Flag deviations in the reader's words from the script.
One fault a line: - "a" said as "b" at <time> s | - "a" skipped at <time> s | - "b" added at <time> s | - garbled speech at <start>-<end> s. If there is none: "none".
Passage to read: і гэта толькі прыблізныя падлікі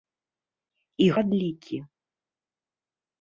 - "гэта толькі прыблізныя" skipped at 1.1 s